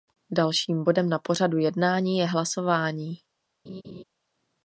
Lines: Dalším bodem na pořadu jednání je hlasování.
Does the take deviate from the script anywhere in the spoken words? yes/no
no